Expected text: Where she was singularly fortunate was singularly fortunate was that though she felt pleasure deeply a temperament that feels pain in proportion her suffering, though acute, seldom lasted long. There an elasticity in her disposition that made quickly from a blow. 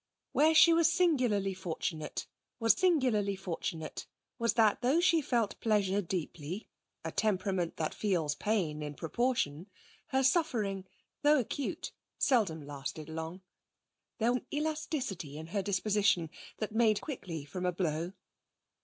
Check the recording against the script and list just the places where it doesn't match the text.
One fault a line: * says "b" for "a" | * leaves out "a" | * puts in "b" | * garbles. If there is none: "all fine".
all fine